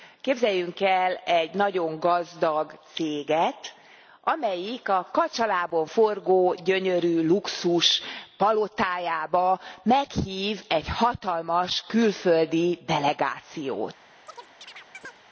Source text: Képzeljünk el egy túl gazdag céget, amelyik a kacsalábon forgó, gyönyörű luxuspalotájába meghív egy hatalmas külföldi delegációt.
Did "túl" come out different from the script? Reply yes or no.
yes